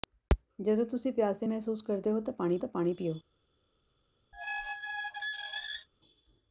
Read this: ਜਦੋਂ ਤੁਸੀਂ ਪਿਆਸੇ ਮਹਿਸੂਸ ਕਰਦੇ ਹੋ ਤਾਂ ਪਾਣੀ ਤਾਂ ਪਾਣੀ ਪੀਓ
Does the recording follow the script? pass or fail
pass